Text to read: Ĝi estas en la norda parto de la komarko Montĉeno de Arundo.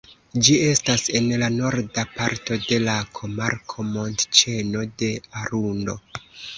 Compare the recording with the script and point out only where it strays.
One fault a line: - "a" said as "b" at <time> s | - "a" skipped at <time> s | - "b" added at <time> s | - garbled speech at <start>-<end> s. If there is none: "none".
none